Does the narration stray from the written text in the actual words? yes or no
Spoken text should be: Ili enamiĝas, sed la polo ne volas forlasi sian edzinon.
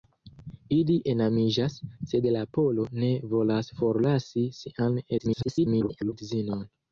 yes